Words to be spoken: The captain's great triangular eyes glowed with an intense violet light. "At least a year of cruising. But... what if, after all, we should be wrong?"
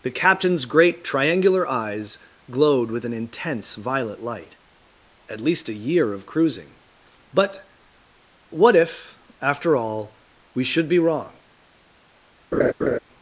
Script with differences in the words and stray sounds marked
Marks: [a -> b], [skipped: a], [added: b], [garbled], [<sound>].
The captain's great triangular eyes glowed with an intense violet light. "At least a year of cruising. But... what if, after all, we should be wrong?" [laugh]